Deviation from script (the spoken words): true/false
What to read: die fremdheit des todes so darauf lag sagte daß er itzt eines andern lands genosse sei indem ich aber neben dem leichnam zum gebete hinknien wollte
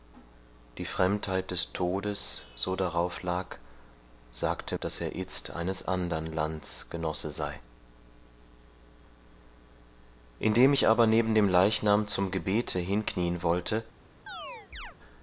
false